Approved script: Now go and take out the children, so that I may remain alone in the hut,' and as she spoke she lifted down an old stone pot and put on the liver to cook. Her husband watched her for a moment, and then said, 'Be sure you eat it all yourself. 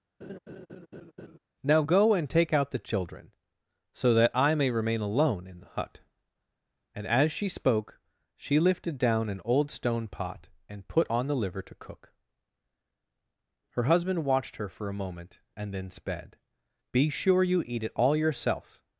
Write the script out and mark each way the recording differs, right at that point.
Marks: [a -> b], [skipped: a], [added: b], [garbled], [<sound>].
[laugh] Now go and take out the children, so that I may remain alone in the hut,' and as she spoke she lifted down an old stone pot and put on the liver to cook. Her husband watched her for a moment, and then [said, -> sped] 'Be sure you eat it all yourself.